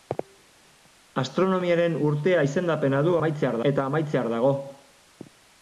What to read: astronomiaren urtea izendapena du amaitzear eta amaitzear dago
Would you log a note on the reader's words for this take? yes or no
no